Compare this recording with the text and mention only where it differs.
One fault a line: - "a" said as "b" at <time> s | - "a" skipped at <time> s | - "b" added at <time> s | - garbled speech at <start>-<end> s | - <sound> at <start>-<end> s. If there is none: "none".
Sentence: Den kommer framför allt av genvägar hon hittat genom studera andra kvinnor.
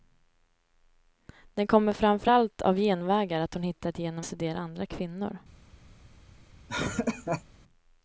- laugh at 6.7-7.4 s